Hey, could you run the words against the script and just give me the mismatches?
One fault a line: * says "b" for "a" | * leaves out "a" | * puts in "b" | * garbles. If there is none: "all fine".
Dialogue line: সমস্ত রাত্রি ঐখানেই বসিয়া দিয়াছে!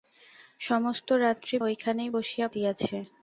all fine